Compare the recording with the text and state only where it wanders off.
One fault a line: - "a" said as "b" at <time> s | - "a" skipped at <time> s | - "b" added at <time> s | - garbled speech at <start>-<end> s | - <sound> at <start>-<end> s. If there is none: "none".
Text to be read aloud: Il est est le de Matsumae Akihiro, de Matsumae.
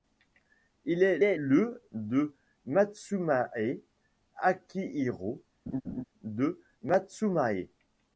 - laugh at 5.7-6.0 s